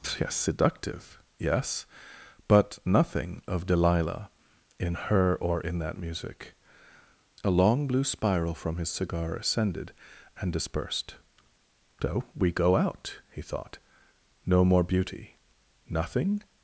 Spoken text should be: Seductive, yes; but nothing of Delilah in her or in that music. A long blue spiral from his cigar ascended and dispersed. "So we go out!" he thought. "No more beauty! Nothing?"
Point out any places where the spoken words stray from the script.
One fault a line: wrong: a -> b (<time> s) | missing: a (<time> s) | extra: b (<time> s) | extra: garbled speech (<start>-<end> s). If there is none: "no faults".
extra: yes (0.2 s)